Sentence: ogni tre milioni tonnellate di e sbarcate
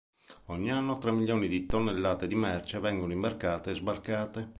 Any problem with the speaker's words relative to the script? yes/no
yes